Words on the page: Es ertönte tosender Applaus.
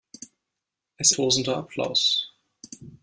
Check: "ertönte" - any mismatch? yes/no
yes